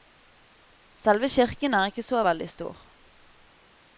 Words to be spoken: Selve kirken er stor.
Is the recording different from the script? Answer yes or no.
yes